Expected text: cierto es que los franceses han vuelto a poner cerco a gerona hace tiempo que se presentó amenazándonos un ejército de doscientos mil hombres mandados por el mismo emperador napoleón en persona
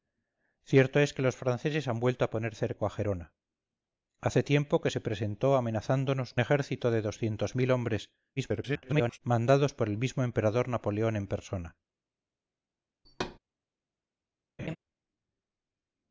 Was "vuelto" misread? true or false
false